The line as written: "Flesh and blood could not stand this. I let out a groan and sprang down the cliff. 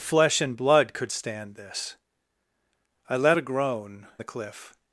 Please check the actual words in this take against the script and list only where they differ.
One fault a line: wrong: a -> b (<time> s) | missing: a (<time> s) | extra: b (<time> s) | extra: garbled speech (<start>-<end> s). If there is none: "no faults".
missing: not (1.1 s)
missing: out (3.4 s)
missing: and sprang down (4.1 s)